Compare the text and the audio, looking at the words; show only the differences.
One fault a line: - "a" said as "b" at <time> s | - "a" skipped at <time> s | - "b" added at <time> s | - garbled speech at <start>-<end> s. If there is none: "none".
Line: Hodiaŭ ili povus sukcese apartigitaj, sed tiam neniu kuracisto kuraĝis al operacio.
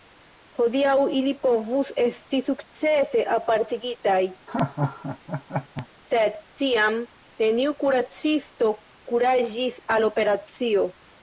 - "esti" added at 2.0 s